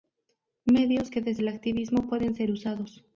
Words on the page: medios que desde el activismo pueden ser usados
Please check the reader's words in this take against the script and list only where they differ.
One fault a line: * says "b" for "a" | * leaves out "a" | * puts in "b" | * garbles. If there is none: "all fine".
all fine